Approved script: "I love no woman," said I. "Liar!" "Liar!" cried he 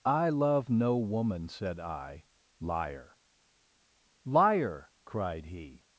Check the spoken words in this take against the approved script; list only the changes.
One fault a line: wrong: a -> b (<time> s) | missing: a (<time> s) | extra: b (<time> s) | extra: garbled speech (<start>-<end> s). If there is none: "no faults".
no faults